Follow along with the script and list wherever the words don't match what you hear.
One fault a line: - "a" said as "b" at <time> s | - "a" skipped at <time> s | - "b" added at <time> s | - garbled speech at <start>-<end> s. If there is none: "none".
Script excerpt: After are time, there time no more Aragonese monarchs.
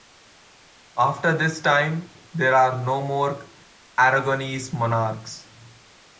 - "are" said as "this" at 1.4 s
- "time" said as "are" at 2.5 s